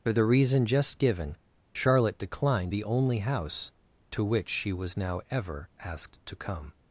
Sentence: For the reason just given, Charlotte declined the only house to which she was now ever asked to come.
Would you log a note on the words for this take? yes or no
no